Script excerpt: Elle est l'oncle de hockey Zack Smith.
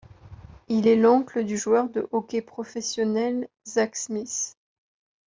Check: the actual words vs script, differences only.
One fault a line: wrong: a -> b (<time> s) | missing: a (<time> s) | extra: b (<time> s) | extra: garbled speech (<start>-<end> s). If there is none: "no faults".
wrong: Elle -> Il (0.7 s)
extra: du joueur (1.4 s)
extra: professionnel (2.4 s)